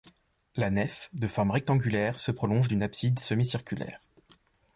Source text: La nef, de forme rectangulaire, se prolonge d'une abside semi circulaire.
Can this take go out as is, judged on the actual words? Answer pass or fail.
pass